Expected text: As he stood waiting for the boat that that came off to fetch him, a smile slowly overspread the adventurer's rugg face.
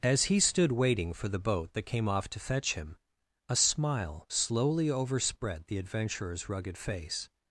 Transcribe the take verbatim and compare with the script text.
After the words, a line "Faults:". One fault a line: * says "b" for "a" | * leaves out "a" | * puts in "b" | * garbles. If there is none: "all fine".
As he stood waiting for the boat that came off to fetch him, a smile slowly overspread the adventurer's rugged face.
Faults:
* leaves out "that"
* says "rugged" for "rugg"